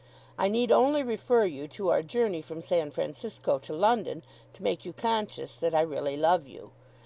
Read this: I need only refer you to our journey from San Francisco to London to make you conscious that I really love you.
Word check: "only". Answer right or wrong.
right